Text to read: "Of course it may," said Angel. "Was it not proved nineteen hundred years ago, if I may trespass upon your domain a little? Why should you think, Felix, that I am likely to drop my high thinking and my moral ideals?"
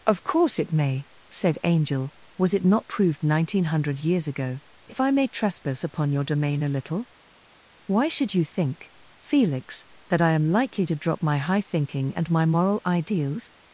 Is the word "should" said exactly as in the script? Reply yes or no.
yes